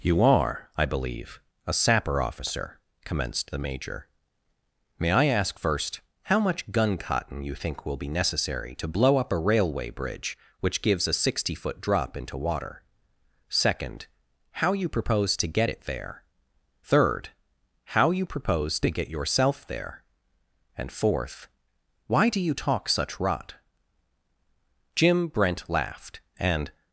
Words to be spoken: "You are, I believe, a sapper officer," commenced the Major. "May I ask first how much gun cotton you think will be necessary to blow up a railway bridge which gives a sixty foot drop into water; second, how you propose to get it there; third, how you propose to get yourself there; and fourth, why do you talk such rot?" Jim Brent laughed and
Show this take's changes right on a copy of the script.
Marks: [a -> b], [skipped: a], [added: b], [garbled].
"You are, I believe, a sapper officer," commenced the Major. "May I ask first how much gun cotton you think will be necessary to blow up a railway bridge which gives a sixty foot drop into water; second, how you propose to get it there; third, how you propose to get yourself there; and fourth, why do you talk such rot?" Jim Brent laughed and